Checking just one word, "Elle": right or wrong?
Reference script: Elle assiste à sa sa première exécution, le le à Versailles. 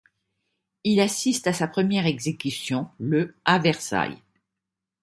wrong